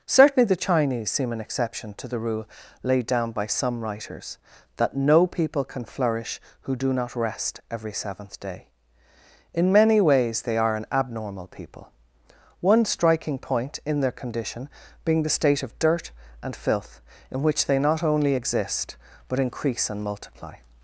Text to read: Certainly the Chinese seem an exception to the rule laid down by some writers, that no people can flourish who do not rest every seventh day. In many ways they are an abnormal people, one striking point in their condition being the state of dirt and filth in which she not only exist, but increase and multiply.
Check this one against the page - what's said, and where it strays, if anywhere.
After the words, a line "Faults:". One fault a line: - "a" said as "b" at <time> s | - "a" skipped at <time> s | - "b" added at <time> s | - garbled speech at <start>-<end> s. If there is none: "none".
Certainly the Chinese seem an exception to the rule laid down by some writers, that no people can flourish who do not rest every seventh day. In many ways they are an abnormal people, one striking point in their condition being the state of dirt and filth in which they not only exist, but increase and multiply.
Faults:
- "she" said as "they" at 17.6 s